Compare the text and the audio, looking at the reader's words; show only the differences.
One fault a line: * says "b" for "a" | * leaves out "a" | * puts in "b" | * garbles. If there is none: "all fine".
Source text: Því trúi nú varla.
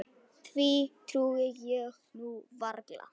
* puts in "ég"